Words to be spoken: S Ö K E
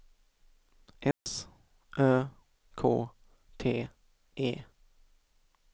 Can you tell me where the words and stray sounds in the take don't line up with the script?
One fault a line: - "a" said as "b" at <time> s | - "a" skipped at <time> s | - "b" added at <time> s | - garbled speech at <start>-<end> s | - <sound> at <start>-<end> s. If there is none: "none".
- dropout at 1.1-1.3 s
- "T" added at 3.6 s